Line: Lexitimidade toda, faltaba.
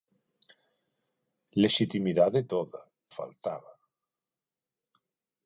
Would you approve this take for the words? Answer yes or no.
yes